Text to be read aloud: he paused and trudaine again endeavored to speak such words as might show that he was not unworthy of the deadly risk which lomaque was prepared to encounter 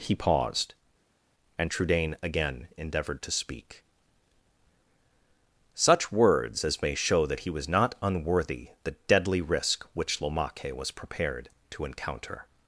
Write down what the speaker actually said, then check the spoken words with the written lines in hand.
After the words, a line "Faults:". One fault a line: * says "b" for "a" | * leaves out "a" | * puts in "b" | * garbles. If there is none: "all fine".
he paused and trudaine again endeavored to speak such words as may show that he was not unworthy the deadly risk which lomaque was prepared to encounter
Faults:
* says "may" for "might"
* leaves out "of"